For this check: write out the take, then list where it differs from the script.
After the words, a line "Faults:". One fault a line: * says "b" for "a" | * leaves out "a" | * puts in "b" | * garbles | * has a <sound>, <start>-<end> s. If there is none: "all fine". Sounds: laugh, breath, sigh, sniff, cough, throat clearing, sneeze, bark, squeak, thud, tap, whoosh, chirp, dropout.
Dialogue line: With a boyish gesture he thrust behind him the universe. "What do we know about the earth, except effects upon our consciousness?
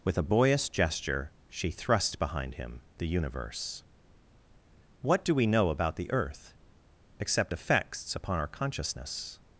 With a boyish gesture she thrust behind him the universe. "What do we know about the earth, except effects upon our consciousness?
Faults:
* says "she" for "he"